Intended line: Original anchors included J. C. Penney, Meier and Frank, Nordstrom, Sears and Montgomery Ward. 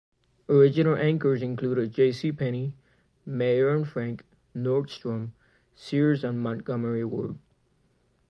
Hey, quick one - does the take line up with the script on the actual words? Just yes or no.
yes